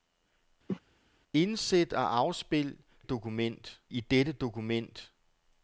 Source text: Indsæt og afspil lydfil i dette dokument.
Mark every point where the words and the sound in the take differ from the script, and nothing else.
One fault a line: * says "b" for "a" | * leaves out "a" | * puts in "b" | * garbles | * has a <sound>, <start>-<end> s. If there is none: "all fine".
* has a cough, 0.7-0.8 s
* says "dokument" for "lydfil"